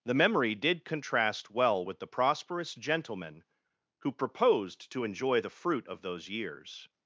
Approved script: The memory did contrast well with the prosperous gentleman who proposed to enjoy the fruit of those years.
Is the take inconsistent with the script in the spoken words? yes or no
no